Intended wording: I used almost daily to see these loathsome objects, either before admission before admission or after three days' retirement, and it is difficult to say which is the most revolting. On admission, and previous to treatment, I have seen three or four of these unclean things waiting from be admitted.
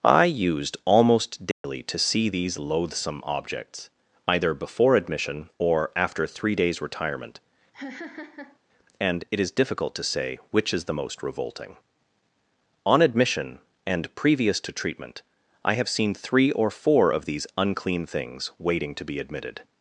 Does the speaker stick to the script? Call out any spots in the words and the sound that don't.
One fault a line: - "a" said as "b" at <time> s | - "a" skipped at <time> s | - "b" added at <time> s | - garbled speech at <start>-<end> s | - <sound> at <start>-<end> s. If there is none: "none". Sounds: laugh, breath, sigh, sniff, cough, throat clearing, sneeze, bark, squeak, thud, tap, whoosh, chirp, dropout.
- dropout at 1.5-1.6 s
- "before admission" skipped at 5.5 s
- laugh at 7.7-8.6 s
- "from" said as "to" at 18.9 s